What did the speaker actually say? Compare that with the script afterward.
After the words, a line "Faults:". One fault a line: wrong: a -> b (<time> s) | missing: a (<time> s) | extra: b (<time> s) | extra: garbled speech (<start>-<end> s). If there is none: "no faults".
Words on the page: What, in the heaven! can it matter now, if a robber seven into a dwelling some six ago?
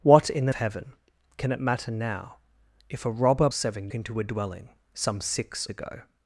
What, in the heaven! can it matter now, if a robber seven into a dwelling some six ago?
Faults:
no faults